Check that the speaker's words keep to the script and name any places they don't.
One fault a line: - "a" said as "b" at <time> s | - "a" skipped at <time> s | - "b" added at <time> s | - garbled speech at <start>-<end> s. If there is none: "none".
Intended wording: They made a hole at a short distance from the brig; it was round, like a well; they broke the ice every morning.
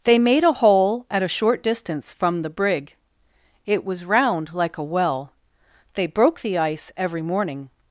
none